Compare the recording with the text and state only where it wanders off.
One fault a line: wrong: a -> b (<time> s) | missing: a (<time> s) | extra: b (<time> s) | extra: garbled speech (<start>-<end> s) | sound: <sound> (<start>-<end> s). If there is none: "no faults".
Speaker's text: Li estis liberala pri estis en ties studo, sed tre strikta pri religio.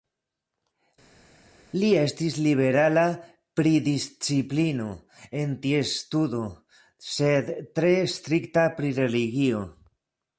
wrong: estis -> disciplino (3.8 s)